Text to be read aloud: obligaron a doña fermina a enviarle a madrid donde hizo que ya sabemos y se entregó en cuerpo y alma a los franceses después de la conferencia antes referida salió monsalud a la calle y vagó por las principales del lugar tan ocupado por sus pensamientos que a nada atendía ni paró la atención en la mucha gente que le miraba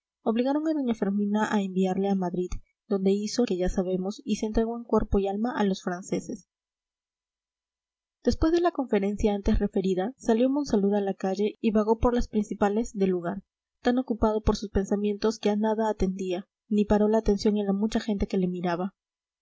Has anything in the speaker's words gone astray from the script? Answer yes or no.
no